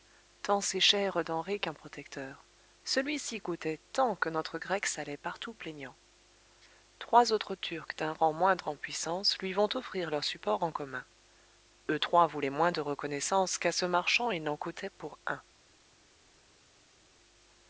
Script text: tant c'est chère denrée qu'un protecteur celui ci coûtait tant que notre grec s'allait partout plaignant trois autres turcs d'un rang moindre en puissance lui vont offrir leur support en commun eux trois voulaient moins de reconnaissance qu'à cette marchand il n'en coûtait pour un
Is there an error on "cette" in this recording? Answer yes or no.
yes